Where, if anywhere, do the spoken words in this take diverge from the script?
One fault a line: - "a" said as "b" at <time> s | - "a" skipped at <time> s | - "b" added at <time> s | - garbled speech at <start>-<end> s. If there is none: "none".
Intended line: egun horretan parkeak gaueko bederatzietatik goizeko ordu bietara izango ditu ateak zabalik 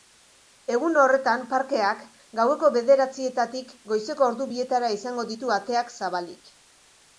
none